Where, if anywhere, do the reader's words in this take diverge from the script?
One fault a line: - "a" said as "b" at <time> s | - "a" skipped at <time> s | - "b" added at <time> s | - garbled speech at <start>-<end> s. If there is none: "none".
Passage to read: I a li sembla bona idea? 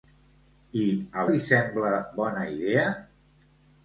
none